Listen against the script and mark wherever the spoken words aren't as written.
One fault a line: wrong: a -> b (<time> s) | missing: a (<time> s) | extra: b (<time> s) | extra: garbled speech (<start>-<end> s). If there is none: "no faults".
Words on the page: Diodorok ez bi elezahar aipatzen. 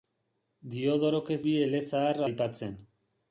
no faults